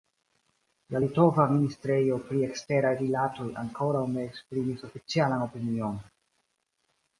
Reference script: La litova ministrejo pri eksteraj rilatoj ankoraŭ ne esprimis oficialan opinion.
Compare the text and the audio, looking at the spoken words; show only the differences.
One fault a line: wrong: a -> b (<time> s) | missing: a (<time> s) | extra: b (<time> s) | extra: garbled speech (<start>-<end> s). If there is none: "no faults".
no faults